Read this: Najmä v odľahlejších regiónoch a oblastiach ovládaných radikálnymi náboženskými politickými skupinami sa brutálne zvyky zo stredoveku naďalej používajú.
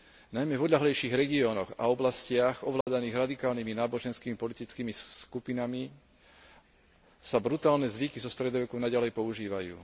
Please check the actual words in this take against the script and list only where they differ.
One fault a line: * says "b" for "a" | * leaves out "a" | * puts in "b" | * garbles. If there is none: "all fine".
all fine